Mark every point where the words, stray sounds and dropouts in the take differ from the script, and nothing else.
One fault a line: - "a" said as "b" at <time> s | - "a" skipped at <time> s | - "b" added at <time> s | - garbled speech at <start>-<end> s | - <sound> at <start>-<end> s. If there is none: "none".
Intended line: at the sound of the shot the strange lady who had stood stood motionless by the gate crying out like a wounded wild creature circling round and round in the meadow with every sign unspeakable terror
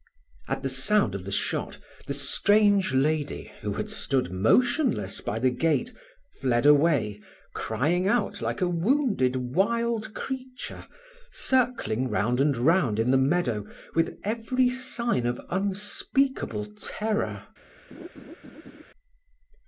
- "stood" skipped at 4.3 s
- "fled away" added at 6.4 s
- "of" added at 15.3 s
- laugh at 17.9-18.8 s